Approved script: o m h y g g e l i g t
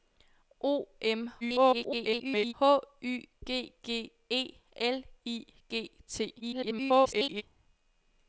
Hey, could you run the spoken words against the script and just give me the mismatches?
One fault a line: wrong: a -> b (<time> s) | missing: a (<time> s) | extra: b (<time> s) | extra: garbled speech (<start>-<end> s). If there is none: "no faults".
extra: garbled speech (1.4-2.5 s)
extra: garbled speech (6.4-7.4 s)